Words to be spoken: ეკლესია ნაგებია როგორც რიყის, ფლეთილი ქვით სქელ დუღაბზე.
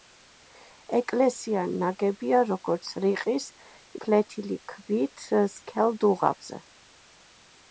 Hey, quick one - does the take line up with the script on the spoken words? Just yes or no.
yes